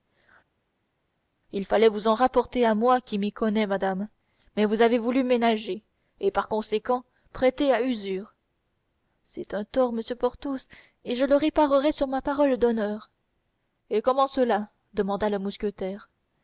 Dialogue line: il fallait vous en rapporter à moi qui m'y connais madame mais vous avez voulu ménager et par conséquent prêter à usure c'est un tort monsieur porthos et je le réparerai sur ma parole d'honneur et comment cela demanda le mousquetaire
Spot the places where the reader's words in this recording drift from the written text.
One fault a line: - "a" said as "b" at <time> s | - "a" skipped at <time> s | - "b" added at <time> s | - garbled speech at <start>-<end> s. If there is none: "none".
none